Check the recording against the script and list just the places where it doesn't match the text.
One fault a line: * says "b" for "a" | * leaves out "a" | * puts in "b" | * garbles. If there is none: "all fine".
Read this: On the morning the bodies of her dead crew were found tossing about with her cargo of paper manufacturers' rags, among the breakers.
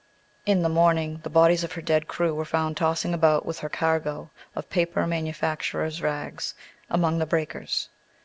* says "In" for "On"